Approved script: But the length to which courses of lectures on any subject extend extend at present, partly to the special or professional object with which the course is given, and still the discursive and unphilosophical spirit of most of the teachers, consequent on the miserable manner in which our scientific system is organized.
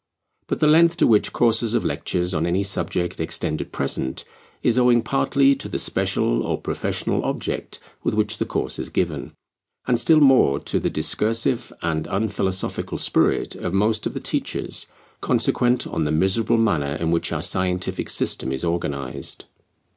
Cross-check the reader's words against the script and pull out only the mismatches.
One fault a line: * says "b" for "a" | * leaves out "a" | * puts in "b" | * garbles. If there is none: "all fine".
* leaves out "extend"
* puts in "is owing"
* puts in "more to"